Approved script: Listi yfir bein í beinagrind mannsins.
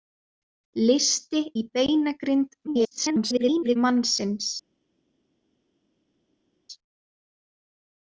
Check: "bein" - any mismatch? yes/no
yes